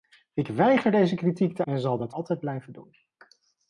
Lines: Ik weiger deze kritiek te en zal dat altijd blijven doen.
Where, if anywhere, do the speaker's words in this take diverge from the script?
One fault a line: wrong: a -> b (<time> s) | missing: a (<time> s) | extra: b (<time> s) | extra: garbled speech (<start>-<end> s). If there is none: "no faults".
no faults